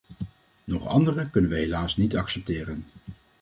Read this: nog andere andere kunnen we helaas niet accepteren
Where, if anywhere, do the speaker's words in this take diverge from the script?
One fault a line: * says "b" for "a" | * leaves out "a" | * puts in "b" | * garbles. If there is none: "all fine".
* leaves out "andere"